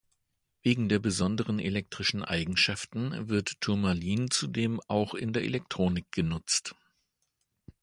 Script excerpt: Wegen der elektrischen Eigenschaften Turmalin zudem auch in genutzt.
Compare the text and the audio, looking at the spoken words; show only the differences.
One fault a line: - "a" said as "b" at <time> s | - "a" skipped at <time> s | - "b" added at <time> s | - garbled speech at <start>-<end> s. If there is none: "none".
- "besonderen" added at 1.0 s
- "wird" added at 3.3 s
- "der Elektronik" added at 5.3 s